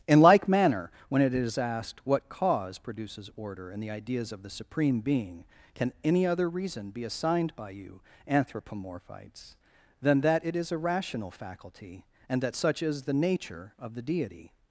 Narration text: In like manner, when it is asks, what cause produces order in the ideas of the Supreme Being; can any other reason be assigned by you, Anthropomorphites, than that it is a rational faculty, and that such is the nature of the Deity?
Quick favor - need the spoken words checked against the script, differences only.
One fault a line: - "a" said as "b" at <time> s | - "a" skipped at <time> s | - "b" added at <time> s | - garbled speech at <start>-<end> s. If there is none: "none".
- "asks" said as "asked" at 1.6 s